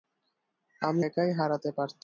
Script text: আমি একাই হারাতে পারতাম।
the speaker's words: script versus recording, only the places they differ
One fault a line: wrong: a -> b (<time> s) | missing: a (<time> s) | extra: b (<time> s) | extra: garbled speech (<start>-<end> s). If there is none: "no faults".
no faults